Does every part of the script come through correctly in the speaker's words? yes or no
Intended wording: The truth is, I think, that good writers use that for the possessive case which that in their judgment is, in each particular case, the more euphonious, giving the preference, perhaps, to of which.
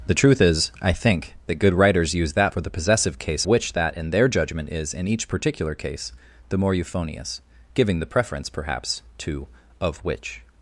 yes